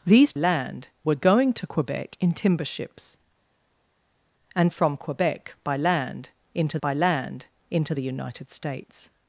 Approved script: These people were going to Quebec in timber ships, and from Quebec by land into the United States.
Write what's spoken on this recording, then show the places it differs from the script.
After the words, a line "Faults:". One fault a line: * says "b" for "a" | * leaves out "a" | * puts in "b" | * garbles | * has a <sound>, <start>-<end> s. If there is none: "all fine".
These land were going to Quebec in timber ships, and from Quebec by land into by land into the United States.
Faults:
* says "land" for "people"
* puts in "by land into"